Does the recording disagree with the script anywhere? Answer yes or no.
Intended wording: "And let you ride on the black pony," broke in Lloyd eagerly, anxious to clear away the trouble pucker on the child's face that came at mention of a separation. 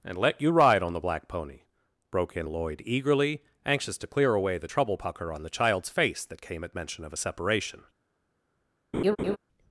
no